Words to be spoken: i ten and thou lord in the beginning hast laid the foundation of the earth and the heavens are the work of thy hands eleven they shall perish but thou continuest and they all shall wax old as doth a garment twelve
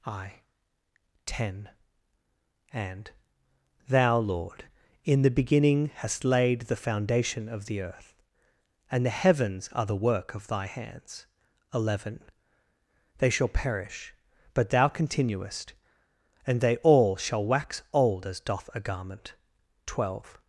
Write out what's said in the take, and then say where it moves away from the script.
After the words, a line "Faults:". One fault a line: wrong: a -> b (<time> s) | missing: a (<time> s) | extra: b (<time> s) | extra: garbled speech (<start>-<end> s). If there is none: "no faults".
i ten and thou lord in the beginning hast laid the foundation of the earth and the heavens are the work of thy hands eleven they shall perish but thou continuest and they all shall wax old as doth a garment twelve
Faults:
no faults